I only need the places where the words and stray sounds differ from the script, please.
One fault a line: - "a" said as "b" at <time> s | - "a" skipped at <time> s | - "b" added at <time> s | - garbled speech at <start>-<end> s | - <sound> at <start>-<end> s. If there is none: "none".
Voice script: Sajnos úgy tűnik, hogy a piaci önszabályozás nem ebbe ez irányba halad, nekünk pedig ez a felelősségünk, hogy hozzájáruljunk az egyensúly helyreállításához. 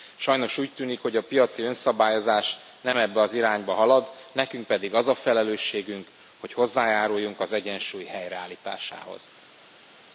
- "ez" said as "az" at 3.2 s
- "ez" said as "az" at 4.9 s